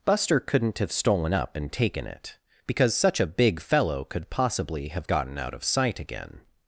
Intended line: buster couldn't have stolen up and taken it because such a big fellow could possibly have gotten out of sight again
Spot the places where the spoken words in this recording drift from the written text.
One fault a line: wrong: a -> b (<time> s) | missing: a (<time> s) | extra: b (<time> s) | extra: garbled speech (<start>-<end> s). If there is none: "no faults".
no faults